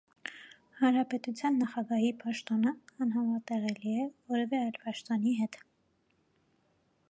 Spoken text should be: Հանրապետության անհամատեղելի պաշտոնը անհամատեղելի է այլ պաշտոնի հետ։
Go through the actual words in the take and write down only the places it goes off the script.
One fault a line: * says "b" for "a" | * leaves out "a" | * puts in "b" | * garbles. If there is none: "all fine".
* says "նախագահի" for "անհամատեղելի"
* puts in "որևէ"